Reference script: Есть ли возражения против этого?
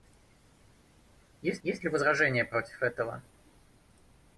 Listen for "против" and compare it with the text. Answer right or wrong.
right